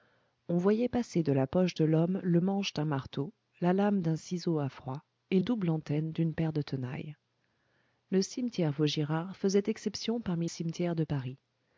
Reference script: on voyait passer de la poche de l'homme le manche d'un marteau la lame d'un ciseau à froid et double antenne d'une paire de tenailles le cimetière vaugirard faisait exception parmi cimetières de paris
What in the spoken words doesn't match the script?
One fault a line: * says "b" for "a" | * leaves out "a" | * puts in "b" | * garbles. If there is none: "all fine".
all fine